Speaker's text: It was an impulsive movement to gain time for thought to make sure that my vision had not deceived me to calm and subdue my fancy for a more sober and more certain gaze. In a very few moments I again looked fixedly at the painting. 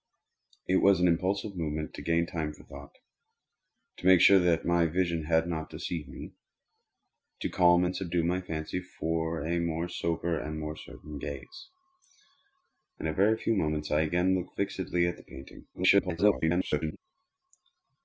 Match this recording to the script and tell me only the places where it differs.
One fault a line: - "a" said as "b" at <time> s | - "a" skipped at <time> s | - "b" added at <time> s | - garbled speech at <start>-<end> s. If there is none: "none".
- garbled speech at 15.7-17.0 s